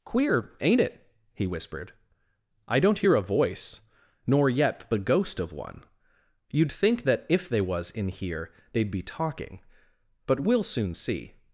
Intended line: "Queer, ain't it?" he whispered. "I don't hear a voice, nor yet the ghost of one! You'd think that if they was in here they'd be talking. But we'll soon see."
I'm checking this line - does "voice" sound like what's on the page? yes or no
yes